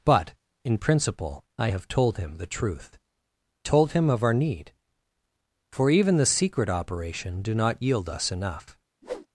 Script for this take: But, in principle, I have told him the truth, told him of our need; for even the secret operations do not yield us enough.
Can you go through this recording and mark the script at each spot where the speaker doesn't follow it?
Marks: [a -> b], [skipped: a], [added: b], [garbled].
But, in principle, I have told him the truth, told him of our need; for even the secret [operations -> operation] do not yield us enough.